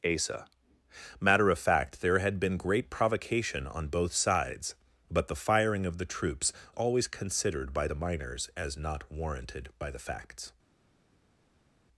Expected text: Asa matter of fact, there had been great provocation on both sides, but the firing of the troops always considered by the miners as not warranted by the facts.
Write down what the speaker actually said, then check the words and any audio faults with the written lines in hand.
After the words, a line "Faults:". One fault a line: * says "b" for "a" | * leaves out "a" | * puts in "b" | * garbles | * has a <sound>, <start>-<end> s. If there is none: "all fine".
Asa matter of fact, there had been great provocation on both sides, but the firing of the troops always considered by the miners as not warranted by the facts.
Faults:
all fine